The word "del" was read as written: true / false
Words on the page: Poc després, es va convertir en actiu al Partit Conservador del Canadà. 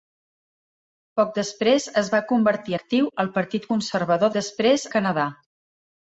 false